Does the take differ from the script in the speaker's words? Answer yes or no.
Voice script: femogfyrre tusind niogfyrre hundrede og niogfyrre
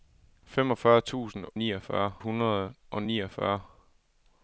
no